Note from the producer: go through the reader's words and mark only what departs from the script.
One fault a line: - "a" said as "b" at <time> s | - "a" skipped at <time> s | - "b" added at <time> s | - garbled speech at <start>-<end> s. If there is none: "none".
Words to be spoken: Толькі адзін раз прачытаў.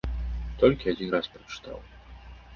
none